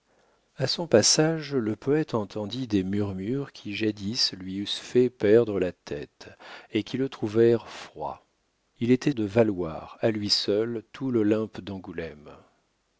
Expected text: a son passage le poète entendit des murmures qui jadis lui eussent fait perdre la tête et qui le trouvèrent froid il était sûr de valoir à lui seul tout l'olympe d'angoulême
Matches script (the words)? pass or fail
fail